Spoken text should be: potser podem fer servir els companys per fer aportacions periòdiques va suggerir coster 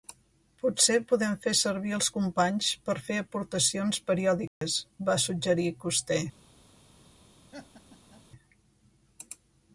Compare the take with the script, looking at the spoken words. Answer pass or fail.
pass